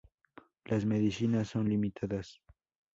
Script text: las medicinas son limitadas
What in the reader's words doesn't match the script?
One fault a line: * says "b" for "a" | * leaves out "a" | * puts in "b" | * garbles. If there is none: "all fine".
all fine